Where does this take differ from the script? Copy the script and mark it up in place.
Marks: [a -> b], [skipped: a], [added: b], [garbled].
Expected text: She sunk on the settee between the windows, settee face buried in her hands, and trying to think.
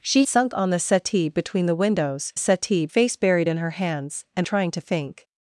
She sunk on the settee between the windows, settee face buried in her hands, and trying to think.